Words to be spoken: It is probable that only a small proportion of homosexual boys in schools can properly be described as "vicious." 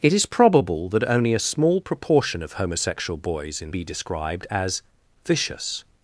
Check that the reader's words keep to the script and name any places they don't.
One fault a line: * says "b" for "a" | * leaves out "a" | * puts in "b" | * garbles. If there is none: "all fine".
* leaves out "schools can properly"